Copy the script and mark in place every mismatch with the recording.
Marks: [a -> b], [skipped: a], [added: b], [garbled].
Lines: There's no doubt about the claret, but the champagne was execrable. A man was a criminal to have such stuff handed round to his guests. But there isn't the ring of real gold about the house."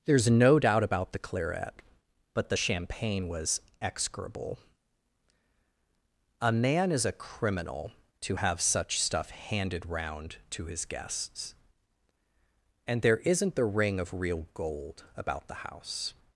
There's no doubt about the claret, but the champagne was execrable. A man [was -> is] a criminal to have such stuff handed round to his guests. [But -> And] there isn't the ring of real gold about the house."